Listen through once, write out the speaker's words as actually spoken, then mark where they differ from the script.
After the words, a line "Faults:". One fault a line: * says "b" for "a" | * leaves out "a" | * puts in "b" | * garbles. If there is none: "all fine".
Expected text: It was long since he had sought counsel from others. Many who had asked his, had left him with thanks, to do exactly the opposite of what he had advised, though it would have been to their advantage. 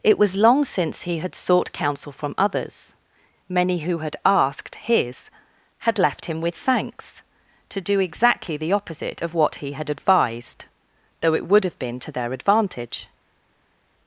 It was long since he had sought counsel from others. Many who had asked his, had left him with thanks, to do exactly the opposite of what he had advised, though it would have been to their advantage.
Faults:
all fine